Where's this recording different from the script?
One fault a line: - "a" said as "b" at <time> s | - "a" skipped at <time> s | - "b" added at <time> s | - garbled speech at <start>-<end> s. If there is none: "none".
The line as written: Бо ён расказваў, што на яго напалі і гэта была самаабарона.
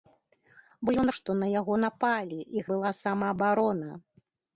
- "расказваў" skipped at 1.1 s
- "гэта" skipped at 2.6 s